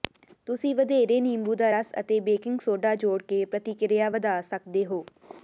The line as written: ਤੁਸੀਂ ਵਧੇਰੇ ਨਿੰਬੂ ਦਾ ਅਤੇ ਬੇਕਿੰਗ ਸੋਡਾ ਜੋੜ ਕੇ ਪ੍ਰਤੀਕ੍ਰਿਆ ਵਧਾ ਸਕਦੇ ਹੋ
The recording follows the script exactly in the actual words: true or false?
false